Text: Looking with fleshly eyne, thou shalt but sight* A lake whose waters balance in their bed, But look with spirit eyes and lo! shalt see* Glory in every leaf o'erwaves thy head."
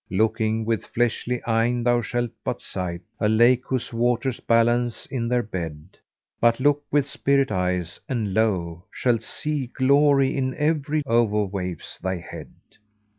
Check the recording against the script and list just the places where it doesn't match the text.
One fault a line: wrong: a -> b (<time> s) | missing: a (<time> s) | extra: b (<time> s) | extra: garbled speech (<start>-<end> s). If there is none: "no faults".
missing: leaf (11.0 s)